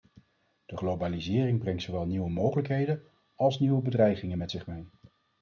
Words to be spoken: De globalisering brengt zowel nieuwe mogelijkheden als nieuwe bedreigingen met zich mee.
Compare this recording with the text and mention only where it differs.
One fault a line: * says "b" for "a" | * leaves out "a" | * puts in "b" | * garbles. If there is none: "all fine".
all fine